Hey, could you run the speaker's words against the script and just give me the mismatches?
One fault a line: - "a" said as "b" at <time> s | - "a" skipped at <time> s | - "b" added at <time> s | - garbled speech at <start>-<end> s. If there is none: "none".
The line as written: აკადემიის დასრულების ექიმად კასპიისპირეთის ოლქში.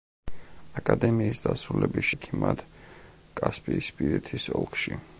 none